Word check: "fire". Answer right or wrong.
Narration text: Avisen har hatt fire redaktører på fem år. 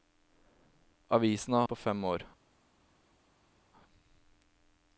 wrong